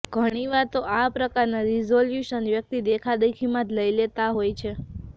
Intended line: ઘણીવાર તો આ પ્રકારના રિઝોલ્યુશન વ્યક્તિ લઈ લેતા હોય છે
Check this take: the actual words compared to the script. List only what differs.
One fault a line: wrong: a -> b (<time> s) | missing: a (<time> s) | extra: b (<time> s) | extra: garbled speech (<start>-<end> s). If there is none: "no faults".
extra: દેખાદેખીમાં જ (2.9 s)